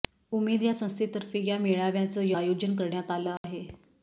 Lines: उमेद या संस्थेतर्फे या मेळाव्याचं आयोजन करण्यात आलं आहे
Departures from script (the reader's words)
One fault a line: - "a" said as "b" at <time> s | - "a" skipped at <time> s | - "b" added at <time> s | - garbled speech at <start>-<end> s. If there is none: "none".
none